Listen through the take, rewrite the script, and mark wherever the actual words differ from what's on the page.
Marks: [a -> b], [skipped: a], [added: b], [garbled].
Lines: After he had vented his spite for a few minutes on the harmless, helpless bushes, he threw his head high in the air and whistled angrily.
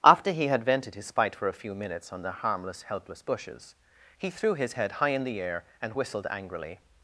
After he had vented his spite for a few minutes on the harmless, helpless bushes, he threw his head high in the air and whistled angrily.